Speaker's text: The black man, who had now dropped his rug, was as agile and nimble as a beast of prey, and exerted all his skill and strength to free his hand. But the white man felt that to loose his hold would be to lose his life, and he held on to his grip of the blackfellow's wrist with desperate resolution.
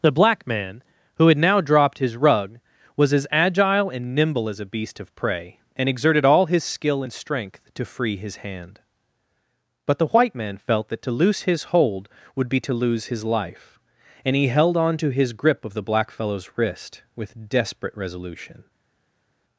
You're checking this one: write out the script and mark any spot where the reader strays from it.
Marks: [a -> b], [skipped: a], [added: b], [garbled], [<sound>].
The black man, who had now dropped his rug, was as agile and nimble as a beast of prey, and exerted all his skill and strength to free his hand. But the white man felt that to loose his hold would be to lose his life, and he held on to his grip of the blackfellow's wrist with desperate resolution.